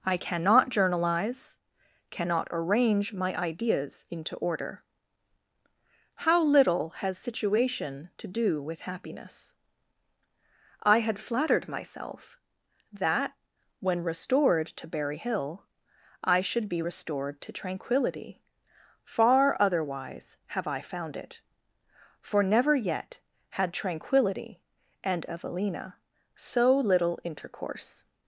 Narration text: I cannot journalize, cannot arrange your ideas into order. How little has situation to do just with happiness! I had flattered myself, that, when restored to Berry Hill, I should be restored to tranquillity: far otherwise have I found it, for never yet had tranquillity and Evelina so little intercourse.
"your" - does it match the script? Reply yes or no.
no